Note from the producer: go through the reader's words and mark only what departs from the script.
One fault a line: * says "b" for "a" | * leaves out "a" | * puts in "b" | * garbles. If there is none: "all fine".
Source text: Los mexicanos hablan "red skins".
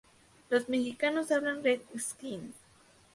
all fine